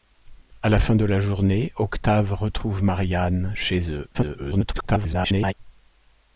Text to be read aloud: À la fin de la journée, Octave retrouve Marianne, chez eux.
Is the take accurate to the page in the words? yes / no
no